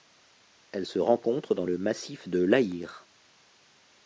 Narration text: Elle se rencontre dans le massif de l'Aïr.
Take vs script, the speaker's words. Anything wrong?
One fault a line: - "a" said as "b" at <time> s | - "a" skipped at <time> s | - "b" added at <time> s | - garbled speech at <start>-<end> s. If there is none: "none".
none